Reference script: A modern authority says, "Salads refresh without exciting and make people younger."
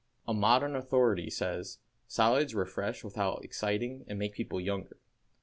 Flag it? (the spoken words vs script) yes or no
no